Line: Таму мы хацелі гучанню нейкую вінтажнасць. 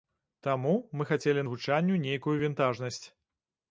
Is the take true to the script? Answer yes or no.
yes